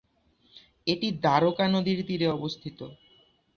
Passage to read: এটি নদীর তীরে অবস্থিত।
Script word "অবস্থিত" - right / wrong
right